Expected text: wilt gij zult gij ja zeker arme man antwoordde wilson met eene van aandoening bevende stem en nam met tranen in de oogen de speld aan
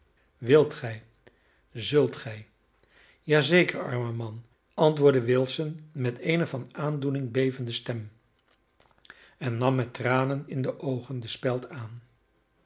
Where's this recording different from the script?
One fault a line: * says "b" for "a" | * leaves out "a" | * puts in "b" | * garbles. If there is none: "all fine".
all fine